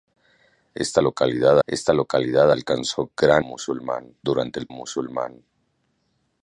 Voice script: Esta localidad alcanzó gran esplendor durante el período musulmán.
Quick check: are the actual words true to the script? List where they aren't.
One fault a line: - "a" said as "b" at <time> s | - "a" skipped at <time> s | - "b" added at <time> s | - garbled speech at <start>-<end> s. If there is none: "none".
- "esta localidad" added at 1.7 s
- "esplendor" said as "musulmán" at 3.4 s
- "período" skipped at 4.7 s